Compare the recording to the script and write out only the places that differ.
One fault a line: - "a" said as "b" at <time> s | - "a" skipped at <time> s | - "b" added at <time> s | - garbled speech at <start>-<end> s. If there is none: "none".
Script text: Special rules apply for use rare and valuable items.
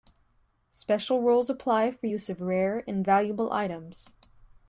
- "of" added at 2.3 s